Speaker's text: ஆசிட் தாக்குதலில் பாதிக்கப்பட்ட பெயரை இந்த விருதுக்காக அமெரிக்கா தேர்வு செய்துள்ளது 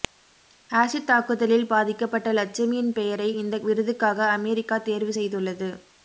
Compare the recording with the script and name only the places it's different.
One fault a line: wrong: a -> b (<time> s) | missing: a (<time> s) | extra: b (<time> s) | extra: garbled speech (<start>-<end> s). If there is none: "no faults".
extra: லட்சுமியின் (2.3 s)